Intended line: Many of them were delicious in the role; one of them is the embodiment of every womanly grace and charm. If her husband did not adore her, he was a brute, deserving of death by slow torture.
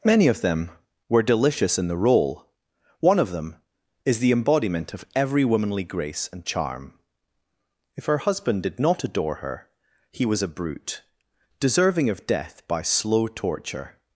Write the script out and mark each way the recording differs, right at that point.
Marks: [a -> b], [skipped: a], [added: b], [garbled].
Many of them were delicious in the role; one of them is the embodiment of every womanly grace and charm. If her husband did not adore her, he was a brute, deserving of death by slow torture.